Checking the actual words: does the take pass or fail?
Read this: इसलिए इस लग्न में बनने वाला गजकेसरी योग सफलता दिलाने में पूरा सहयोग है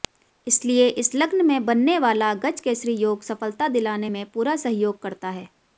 fail